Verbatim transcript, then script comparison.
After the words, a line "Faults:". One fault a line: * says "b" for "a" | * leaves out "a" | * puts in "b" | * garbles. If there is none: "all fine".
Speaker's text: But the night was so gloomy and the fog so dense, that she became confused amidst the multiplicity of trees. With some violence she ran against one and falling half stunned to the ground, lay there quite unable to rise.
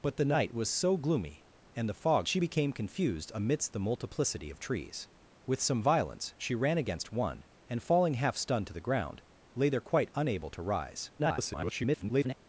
But the night was so gloomy and the fog she became confused amidst the multiplicity of trees. With some violence she ran against one and falling half stunned to the ground, lay there quite unable to rise. [garbled]
Faults:
* leaves out "so dense that"
* garbles